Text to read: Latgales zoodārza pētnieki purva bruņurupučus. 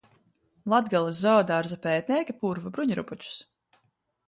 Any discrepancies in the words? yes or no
no